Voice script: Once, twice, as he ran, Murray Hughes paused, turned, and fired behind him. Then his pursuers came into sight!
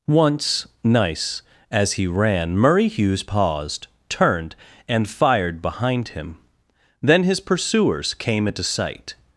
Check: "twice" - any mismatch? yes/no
yes